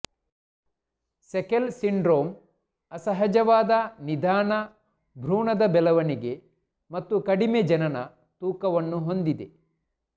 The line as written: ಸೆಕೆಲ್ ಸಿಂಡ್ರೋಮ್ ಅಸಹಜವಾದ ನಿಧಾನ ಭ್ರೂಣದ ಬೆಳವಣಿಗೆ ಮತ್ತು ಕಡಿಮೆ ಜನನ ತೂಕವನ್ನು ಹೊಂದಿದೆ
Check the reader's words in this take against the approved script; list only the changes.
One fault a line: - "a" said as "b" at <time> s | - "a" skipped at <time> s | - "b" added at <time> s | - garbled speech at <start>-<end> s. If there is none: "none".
none